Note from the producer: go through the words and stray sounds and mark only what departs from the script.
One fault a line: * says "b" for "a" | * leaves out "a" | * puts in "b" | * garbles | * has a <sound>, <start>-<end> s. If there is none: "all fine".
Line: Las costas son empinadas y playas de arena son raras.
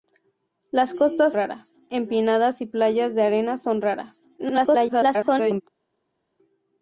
* says "raras" for "son"
* garbles